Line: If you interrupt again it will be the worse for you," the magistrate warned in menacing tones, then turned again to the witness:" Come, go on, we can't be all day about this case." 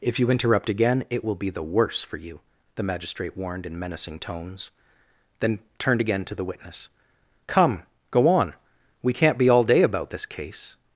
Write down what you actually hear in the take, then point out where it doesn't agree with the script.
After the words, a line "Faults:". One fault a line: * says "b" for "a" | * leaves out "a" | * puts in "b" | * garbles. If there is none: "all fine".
If you interrupt again it will be the worse for you," the magistrate warned in menacing tones, then turned again to the witness:" Come, go on, we can't be all day about this case."
Faults:
all fine